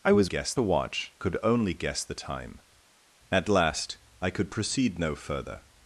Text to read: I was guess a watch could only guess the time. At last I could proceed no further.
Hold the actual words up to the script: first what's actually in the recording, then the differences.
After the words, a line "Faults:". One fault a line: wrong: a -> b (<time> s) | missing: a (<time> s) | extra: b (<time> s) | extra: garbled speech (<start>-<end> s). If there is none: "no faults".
I was guess a watch could only guess the time. At last I could proceed no further.
Faults:
no faults